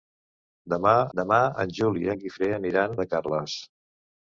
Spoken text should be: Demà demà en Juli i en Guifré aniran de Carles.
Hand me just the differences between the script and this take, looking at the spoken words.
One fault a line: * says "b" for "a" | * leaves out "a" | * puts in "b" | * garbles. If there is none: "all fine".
all fine